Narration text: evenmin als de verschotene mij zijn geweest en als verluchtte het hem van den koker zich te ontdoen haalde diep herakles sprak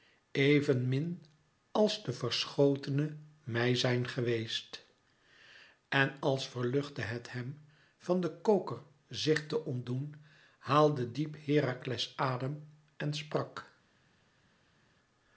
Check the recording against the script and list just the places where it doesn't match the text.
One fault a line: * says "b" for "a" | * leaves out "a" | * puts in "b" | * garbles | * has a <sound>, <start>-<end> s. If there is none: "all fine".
* puts in "adem en"